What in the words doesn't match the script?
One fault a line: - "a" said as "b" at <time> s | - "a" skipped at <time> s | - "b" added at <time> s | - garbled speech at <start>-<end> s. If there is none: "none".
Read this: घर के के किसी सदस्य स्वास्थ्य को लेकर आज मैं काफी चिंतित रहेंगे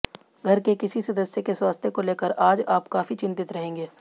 - "के" skipped at 0.7 s
- "के" added at 1.4 s
- "मैं" said as "आप" at 2.7 s